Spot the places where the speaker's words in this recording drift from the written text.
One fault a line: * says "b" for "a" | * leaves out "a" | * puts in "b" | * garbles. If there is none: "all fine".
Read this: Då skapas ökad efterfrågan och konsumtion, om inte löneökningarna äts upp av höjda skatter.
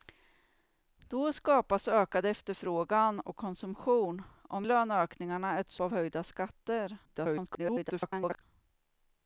* leaves out "inte"
* leaves out "upp"
* garbles